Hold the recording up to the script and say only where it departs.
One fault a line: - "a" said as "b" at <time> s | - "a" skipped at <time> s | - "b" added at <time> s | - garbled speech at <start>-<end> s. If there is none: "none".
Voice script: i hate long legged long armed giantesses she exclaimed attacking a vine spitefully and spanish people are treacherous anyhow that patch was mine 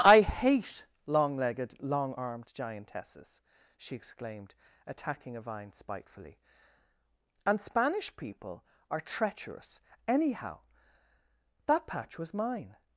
none